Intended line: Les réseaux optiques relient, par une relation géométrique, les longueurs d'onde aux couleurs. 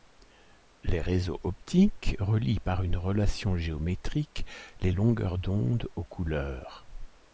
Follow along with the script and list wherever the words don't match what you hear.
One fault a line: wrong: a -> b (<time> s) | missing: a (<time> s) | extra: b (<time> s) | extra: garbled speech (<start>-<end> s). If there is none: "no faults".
no faults